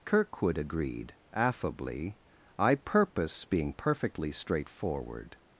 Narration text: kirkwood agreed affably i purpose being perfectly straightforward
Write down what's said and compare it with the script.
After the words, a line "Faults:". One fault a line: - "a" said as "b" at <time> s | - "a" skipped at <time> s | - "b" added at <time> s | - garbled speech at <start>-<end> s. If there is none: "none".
kirkwood agreed affably i purpose being perfectly straightforward
Faults:
none